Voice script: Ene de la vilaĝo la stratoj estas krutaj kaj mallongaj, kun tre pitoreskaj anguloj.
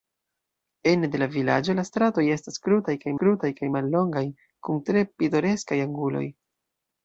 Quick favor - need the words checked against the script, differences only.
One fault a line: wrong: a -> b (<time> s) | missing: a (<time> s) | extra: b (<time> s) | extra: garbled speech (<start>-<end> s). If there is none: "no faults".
extra: krutaj kaj (3.2 s)